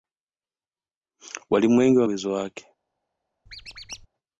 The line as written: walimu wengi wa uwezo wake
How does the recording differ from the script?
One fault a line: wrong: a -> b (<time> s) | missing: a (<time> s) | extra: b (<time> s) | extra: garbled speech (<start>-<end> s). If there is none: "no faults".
no faults